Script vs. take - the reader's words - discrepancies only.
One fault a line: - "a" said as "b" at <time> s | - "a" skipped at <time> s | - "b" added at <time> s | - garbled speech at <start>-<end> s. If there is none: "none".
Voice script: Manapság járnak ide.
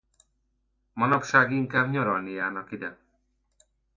- "inkább nyaralni" added at 1.5 s